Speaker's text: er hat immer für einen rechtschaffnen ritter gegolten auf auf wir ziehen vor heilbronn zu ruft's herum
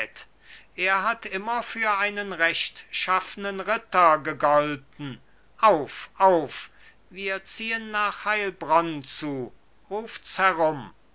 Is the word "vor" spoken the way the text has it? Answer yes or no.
no